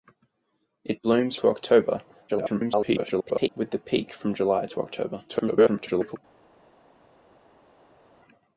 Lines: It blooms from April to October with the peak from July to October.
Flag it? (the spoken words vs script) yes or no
yes